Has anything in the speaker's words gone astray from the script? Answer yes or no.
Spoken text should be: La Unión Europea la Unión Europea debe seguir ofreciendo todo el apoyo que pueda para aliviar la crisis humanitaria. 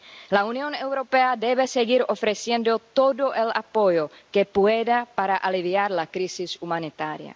yes